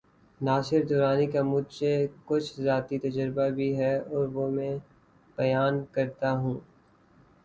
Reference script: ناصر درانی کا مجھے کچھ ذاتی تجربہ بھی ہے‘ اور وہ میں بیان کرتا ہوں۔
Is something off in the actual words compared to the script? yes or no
no